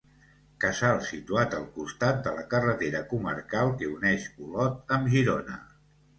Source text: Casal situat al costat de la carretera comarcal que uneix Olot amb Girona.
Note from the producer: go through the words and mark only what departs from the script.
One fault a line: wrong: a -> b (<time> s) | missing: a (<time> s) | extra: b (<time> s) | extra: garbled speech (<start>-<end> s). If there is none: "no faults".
no faults